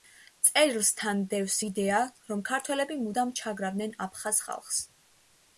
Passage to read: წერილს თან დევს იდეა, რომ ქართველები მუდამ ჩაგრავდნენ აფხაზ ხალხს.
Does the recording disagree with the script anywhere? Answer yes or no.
no